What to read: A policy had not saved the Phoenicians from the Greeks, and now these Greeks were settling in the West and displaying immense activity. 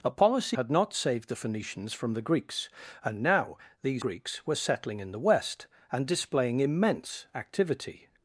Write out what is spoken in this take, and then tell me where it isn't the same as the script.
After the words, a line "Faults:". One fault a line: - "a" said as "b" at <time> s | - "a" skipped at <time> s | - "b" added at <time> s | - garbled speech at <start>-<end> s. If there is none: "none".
A policy had not saved the Phoenicians from the Greeks, and now these Greeks were settling in the West and displaying immense activity.
Faults:
none